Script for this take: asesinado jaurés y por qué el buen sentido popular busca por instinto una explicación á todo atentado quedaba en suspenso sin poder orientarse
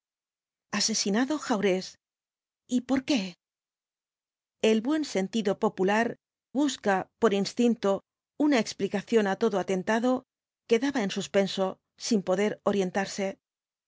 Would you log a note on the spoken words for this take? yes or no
no